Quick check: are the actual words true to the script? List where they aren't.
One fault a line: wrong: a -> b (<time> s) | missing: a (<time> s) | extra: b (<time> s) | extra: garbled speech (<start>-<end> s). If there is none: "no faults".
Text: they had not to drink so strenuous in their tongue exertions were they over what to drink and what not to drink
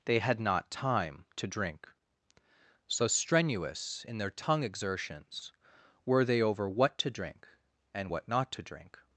extra: time (0.7 s)